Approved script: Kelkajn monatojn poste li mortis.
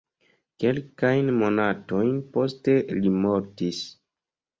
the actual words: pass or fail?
pass